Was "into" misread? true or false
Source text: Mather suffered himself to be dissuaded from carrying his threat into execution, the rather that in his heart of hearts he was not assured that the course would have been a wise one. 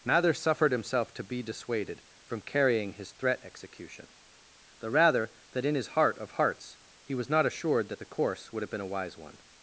true